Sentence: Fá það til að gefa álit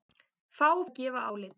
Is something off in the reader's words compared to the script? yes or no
yes